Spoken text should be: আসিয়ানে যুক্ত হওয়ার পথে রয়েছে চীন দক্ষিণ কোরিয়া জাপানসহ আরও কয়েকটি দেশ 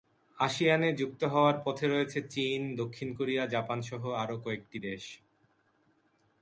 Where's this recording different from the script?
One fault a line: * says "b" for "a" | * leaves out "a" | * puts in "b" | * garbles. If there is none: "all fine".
all fine